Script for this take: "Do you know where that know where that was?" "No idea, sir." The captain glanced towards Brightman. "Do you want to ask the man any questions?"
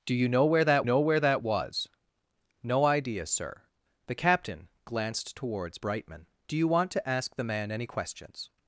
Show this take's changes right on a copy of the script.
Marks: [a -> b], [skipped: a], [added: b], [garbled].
"Do you know where that know where that was?" "No idea, sir." The captain glanced towards Brightman. "Do you want to ask the man any questions?"